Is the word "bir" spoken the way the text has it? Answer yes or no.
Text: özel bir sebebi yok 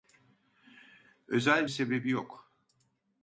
no